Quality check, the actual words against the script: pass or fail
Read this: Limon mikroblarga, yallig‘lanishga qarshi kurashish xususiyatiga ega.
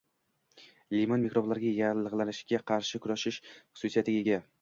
pass